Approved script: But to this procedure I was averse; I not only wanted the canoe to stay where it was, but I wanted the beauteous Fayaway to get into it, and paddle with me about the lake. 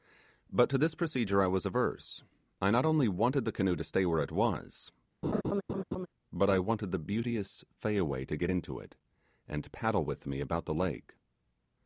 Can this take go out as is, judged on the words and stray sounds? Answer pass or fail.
fail